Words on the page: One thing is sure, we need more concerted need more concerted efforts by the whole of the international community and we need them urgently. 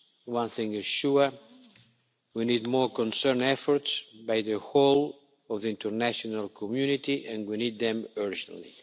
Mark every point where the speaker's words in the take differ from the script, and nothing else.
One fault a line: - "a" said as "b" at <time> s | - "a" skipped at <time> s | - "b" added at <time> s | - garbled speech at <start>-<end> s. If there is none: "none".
- "need more concerted" skipped at 3.4 s